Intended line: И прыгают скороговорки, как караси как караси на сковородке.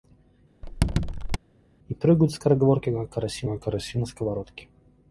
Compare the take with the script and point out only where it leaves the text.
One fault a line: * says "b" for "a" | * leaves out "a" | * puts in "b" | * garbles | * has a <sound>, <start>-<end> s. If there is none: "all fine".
* has a squeak, 0.6-1.4 s